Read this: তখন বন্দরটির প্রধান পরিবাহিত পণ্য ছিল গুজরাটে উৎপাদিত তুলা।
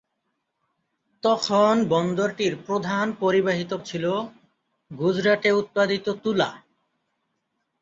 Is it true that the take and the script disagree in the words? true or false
true